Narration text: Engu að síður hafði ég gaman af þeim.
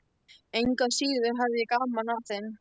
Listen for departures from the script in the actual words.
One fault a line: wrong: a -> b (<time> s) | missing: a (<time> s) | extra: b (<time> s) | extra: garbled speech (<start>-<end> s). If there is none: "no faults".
no faults